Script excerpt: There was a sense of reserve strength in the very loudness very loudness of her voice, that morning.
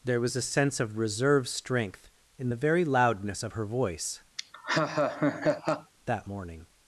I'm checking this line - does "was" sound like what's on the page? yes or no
yes